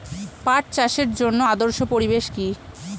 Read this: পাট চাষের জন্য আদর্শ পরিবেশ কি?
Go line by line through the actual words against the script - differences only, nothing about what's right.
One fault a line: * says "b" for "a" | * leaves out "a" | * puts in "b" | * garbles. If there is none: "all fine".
all fine